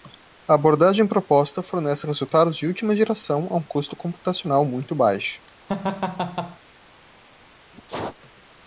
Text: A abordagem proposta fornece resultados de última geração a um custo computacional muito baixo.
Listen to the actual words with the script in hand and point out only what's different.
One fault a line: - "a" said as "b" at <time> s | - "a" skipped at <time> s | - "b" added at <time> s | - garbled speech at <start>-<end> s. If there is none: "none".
none